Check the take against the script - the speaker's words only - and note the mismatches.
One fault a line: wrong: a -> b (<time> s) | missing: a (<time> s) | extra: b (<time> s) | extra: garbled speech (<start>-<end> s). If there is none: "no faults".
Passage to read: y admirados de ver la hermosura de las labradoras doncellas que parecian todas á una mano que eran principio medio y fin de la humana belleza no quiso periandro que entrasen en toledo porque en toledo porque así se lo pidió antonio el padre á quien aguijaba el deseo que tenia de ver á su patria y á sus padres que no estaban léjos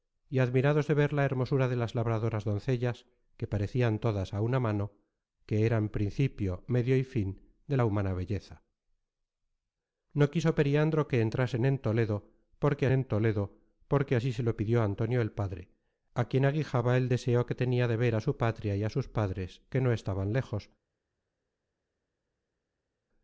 no faults